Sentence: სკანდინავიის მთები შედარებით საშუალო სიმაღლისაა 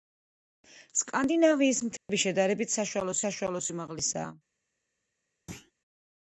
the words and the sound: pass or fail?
fail